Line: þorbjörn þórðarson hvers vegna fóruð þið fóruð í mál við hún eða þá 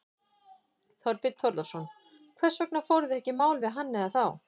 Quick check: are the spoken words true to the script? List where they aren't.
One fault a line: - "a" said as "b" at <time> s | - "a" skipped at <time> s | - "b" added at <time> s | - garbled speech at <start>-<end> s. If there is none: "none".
- "fóruð" said as "ekki" at 3.2 s
- "hún" said as "hann" at 3.8 s